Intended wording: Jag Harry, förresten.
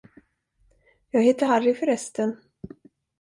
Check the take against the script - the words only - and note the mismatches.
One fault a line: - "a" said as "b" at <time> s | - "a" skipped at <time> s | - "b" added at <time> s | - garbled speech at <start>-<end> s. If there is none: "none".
- "heter" added at 1.2 s